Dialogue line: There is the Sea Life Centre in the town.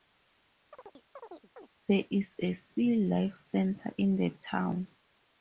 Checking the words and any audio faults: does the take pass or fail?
fail